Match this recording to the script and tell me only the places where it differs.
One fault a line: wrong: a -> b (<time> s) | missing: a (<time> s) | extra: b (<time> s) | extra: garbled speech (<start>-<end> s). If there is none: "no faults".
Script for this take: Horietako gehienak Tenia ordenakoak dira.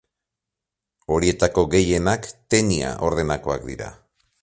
no faults